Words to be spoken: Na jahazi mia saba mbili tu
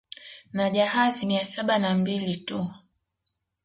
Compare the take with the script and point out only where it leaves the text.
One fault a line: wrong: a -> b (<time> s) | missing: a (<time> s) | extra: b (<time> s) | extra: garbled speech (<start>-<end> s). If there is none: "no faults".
extra: na (1.8 s)